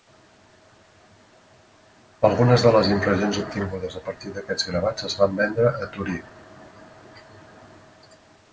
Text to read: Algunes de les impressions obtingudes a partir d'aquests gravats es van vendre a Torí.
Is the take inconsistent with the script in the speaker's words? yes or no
no